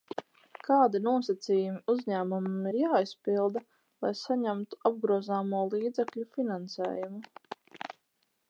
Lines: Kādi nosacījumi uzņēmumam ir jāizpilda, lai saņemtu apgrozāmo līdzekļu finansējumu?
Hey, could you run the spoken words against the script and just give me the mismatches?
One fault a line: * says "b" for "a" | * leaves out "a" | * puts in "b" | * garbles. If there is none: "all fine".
all fine